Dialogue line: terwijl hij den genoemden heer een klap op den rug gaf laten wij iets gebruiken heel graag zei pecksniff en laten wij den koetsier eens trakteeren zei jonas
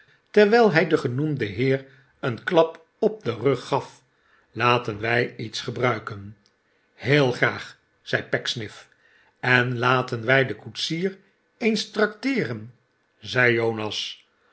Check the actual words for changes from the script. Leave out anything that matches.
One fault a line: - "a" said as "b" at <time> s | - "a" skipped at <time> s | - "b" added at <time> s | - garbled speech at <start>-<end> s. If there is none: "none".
none